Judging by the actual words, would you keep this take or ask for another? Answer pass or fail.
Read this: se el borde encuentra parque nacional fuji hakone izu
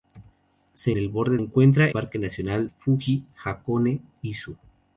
pass